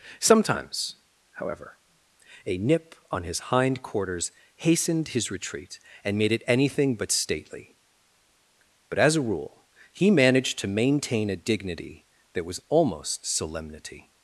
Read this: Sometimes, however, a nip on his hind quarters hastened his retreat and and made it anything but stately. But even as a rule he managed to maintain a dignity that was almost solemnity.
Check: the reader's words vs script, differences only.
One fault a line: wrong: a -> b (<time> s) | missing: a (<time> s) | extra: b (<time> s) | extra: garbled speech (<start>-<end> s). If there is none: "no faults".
missing: and (6.2 s)
missing: even (9.0 s)